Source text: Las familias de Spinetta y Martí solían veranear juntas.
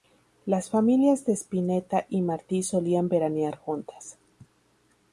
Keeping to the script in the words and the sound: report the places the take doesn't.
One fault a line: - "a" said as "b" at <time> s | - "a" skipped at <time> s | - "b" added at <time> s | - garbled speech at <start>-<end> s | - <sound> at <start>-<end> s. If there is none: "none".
none